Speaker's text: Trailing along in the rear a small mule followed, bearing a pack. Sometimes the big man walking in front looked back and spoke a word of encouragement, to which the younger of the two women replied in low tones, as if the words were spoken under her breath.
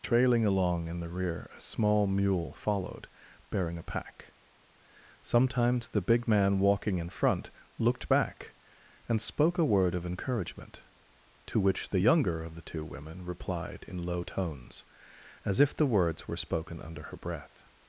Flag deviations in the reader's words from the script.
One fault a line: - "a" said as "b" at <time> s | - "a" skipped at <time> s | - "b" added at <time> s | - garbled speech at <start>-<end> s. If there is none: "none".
none